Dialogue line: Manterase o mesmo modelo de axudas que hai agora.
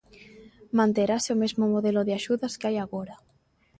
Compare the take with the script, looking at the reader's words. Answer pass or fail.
pass